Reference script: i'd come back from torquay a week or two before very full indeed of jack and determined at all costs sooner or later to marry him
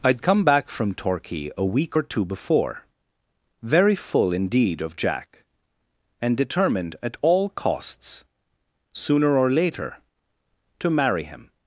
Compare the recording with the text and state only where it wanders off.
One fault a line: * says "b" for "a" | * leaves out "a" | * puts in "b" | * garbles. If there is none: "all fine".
all fine